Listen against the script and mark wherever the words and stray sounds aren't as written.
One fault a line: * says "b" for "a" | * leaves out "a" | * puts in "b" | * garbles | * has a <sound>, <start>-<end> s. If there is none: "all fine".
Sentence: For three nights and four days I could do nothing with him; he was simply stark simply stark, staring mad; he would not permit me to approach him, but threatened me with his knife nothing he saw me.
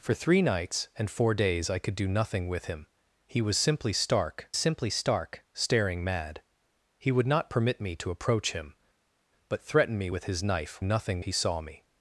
all fine